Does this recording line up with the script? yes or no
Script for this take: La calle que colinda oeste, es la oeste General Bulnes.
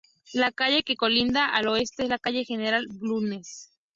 no